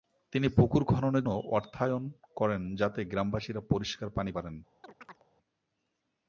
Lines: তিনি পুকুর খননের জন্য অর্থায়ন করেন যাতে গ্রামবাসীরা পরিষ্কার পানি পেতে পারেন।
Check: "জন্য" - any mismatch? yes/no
yes